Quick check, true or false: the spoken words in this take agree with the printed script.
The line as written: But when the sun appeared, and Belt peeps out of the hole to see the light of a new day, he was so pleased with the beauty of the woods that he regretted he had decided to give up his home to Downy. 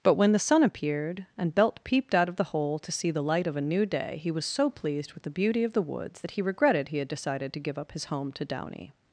false